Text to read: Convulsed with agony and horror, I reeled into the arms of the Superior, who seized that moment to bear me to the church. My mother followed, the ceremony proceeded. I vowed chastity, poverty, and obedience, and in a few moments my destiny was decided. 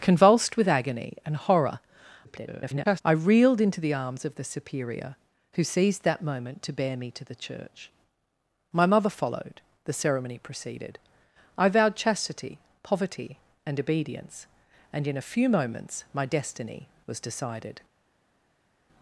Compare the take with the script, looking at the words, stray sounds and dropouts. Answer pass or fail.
fail